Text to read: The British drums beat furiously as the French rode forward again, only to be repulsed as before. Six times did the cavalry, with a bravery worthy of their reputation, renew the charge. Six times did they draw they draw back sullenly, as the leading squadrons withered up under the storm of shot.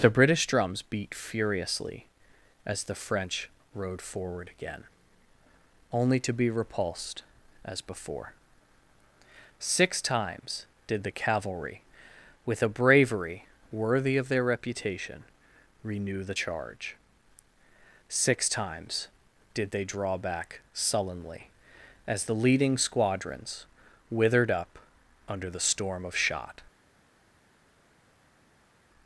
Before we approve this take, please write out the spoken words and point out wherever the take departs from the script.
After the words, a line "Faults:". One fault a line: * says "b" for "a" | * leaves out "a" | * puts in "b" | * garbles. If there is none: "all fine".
The British drums beat furiously as the French rode forward again, only to be repulsed as before. Six times did the cavalry, with a bravery worthy of their reputation, renew the charge. Six times did they draw back sullenly, as the leading squadrons withered up under the storm of shot.
Faults:
* leaves out "they draw"